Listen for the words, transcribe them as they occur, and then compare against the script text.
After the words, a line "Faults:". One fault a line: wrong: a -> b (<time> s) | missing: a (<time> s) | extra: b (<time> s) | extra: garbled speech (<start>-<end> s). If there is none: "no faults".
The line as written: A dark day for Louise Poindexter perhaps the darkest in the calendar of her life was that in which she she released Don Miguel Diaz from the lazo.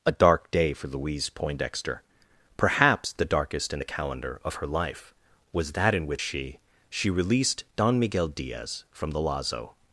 A dark day for Louise Poindexter perhaps the darkest in the calendar of her life was that in which she she released Don Miguel Diaz from the lazo.
Faults:
no faults